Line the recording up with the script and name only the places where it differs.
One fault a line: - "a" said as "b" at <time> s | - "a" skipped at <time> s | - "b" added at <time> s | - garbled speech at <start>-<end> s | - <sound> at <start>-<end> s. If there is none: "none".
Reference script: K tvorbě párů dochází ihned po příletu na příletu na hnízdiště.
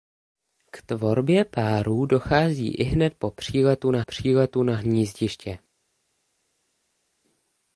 none